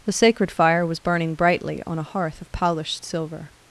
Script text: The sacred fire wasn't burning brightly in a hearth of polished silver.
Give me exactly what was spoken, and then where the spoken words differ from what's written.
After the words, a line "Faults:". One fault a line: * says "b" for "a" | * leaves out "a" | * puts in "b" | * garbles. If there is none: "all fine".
The sacred fire was burning brightly on a hearth of polished silver.
Faults:
* says "was" for "wasn't"
* says "on" for "in"